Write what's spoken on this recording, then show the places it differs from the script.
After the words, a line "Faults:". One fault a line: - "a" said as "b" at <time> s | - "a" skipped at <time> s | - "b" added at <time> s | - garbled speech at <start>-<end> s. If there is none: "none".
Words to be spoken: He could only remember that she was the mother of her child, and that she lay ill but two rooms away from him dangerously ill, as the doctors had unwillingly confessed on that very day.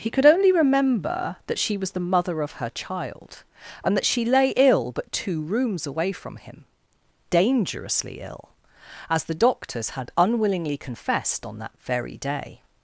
He could only remember that she was the mother of her child, and that she lay ill but two rooms away from him dangerously ill, as the doctors had unwillingly confessed on that very day.
Faults:
none